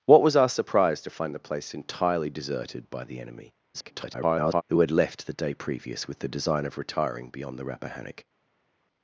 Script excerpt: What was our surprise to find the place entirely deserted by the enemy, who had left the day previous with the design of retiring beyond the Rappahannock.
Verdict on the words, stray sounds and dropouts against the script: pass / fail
fail